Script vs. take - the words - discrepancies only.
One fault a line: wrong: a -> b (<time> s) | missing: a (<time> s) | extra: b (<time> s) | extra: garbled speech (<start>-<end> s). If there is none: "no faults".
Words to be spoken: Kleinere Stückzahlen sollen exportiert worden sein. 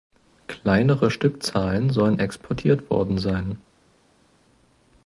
no faults